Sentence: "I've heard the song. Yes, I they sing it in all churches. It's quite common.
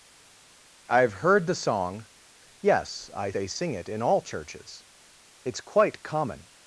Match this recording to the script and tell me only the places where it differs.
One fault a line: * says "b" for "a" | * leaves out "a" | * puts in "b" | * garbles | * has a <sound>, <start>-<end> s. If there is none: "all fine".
all fine